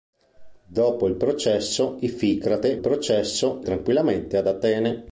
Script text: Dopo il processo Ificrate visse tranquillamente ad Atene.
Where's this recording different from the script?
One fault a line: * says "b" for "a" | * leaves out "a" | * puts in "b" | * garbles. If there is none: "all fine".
* says "processo" for "visse"